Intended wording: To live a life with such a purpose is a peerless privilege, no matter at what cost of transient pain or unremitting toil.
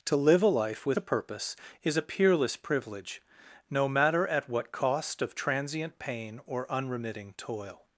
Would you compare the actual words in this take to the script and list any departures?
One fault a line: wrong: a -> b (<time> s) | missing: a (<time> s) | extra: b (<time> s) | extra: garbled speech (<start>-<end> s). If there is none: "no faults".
missing: such (1.0 s)